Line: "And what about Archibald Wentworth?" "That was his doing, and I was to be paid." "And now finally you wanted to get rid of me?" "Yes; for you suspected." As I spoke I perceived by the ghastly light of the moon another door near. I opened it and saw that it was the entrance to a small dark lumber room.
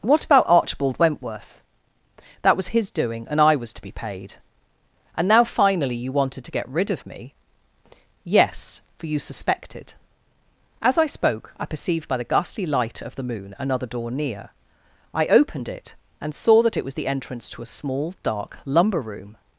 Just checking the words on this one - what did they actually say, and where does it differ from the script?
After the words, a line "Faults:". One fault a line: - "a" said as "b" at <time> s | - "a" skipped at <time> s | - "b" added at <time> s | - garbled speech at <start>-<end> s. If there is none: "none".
what about Archibald Wentworth?" "That was his doing, and I was to be paid." "And now finally you wanted to get rid of me?" "Yes; for you suspected." As I spoke I perceived by the ghastly light of the moon another door near. I opened it and saw that it was the entrance to a small dark lumber room.
Faults:
- "And" skipped at 0.0 s